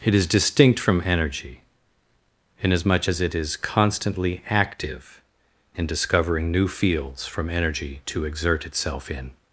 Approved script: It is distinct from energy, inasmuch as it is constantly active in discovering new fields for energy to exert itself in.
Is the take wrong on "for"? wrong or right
wrong